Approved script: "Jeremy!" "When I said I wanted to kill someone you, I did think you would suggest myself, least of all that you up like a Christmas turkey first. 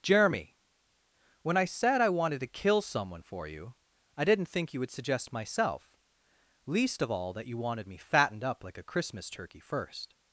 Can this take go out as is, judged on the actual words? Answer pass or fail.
fail